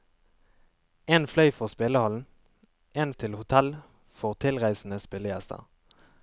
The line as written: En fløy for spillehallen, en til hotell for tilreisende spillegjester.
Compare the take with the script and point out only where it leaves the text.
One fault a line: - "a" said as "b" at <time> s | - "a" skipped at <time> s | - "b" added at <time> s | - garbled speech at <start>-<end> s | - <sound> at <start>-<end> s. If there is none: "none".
none